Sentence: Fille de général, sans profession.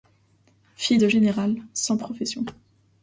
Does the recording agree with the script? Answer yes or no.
yes